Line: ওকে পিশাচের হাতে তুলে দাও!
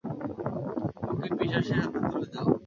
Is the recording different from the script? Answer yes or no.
no